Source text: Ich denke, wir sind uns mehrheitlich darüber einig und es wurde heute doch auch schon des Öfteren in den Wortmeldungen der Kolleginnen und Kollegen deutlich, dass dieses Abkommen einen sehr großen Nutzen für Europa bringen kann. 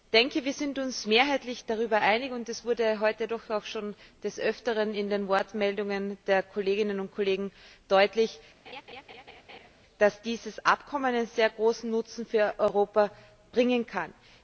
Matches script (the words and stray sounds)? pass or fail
fail